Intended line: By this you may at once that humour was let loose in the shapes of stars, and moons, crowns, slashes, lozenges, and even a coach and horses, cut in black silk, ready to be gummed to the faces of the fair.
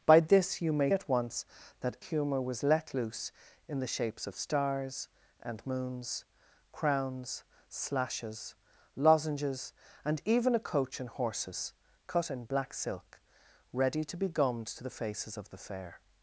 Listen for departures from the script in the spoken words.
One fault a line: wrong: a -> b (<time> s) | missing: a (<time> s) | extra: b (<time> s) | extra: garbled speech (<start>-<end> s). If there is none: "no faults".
no faults